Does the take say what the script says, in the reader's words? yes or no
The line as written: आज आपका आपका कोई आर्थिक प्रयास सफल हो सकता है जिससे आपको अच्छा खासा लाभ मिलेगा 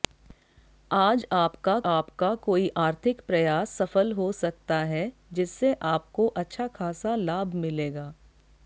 yes